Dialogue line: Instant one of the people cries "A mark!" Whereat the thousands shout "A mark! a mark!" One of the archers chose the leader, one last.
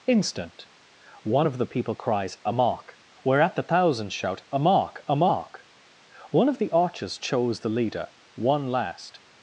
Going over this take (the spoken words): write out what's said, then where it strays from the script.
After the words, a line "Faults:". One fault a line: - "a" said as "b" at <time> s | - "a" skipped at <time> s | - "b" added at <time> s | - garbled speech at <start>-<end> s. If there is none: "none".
Instant one of the people cries "A mark!" Whereat the thousands shout "A mark! a mark!" One of the archers chose the leader, one last.
Faults:
none